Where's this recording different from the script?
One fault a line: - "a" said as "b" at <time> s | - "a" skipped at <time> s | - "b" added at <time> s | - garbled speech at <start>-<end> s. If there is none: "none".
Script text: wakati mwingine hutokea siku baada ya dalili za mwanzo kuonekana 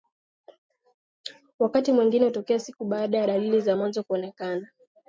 none